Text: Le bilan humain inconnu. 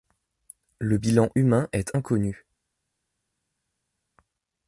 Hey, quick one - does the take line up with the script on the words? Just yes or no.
no